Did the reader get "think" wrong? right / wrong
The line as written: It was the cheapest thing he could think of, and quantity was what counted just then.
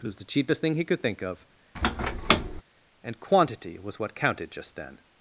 right